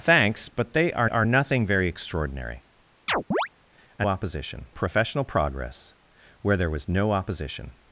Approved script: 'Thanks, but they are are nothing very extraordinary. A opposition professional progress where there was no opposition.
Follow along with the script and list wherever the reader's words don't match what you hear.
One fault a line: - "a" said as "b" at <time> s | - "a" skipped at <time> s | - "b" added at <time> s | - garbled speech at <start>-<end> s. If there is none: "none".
none